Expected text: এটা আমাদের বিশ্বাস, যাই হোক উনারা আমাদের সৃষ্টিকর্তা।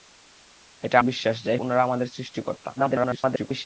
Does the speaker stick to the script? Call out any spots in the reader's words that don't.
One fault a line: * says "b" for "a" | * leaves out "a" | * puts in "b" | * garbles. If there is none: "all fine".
* leaves out "আমাদের"
* leaves out "হোক"
* garbles